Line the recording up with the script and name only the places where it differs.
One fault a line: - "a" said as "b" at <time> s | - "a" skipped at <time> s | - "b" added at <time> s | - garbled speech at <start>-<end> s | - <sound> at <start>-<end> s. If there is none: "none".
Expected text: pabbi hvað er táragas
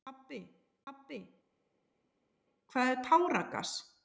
- "pabbi" added at 0.9 s